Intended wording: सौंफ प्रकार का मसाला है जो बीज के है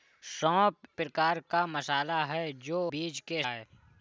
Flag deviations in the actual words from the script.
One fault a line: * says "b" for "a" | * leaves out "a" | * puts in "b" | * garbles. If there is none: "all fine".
all fine